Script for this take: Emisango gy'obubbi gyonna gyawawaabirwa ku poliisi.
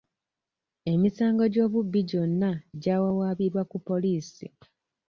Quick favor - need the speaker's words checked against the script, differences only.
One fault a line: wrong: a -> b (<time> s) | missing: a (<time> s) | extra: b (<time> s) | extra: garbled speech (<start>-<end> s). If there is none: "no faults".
no faults